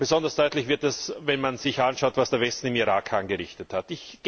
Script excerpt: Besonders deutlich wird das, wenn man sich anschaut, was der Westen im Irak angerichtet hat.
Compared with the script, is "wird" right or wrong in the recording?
right